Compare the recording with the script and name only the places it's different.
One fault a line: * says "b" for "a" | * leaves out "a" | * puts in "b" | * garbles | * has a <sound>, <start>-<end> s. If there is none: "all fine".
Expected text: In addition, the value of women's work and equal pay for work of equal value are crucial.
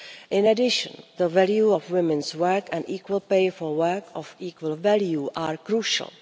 all fine